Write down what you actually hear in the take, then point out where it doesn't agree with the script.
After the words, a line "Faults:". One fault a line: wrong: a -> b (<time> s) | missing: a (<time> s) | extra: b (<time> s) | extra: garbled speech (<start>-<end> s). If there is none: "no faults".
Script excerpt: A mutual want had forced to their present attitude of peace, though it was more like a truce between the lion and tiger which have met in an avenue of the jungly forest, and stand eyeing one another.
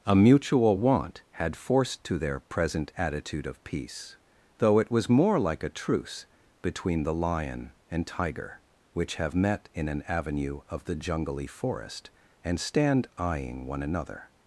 A mutual want had forced to their present attitude of peace, though it was more like a truce between the lion and tiger which have met in an avenue of the jungly forest, and stand eyeing one another.
Faults:
no faults